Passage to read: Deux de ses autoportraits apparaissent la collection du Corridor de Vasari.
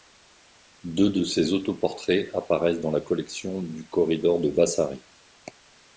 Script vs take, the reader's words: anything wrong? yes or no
yes